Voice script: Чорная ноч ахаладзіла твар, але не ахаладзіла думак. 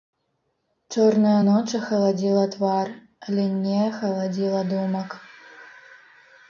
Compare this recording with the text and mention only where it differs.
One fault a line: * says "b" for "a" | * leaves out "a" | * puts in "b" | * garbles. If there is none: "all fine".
all fine